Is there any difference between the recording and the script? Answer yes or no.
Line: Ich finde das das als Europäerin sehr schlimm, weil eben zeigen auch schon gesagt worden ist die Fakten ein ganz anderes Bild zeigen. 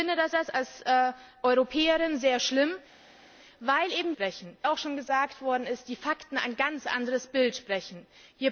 no